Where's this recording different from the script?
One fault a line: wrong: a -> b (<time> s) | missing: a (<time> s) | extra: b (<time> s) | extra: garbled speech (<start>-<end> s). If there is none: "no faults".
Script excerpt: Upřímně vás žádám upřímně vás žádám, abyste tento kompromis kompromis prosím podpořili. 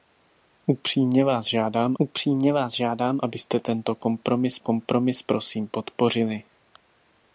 no faults